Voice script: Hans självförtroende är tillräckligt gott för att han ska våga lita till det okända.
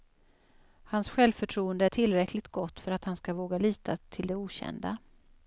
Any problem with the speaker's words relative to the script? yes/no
no